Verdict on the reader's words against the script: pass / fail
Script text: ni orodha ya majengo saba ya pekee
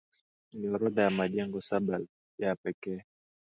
pass